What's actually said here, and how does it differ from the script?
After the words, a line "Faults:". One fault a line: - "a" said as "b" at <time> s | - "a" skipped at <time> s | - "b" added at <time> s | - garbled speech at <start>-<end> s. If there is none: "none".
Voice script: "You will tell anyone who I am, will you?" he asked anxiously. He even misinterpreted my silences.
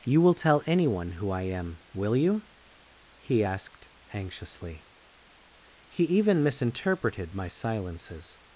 "You will tell anyone who I am, will you?" he asked anxiously. He even misinterpreted my silences.
Faults:
none